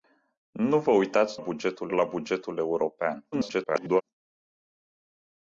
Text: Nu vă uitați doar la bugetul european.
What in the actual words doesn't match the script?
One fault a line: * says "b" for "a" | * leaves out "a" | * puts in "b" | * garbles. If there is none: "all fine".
* says "bugetul" for "doar"
* garbles